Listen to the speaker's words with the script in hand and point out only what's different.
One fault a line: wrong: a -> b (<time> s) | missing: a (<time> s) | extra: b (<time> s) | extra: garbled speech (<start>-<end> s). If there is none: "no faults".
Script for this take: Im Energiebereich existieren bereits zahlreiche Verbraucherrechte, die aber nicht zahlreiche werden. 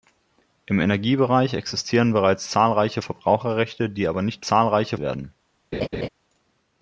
no faults